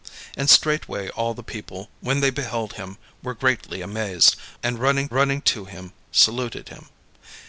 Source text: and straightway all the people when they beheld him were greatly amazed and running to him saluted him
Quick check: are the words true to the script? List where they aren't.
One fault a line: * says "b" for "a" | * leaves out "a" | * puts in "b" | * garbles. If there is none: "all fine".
* puts in "running"